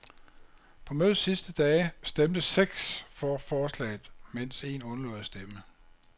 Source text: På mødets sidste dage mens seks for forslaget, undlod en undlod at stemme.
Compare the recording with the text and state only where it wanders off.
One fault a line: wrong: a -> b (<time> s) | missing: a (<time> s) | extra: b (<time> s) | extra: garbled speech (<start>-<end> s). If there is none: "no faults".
wrong: mens -> stemte (2.0 s)
wrong: undlod -> mens (4.3 s)